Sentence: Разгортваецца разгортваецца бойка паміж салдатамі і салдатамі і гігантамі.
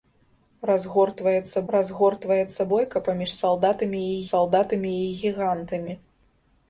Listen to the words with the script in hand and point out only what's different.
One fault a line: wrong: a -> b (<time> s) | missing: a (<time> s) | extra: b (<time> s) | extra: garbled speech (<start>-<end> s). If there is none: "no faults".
no faults